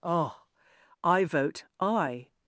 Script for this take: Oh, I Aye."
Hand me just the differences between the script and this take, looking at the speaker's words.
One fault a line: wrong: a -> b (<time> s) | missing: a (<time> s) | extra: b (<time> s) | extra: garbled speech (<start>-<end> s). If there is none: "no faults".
extra: vote (1.2 s)